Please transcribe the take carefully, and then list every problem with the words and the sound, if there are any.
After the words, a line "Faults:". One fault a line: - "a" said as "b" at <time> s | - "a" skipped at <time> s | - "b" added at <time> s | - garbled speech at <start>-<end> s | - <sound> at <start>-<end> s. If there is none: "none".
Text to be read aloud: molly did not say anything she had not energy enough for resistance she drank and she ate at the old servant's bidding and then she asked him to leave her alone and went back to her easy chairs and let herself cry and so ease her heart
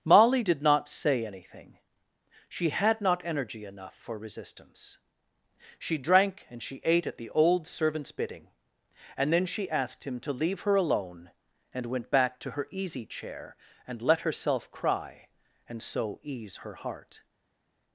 molly did not say anything she had not energy enough for resistance she drank and she ate at the old servant's bidding and then she asked him to leave her alone and went back to her easy chair and let herself cry and so ease her heart
Faults:
- "chairs" said as "chair" at 13.1 s